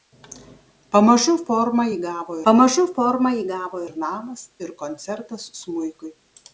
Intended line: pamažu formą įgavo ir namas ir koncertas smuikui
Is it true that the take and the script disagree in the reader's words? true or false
true